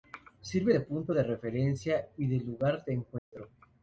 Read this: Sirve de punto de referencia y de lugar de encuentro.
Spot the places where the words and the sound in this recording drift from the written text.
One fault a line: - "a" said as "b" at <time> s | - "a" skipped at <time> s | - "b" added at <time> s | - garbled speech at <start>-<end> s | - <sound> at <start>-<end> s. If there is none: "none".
- dropout at 3.2-3.3 s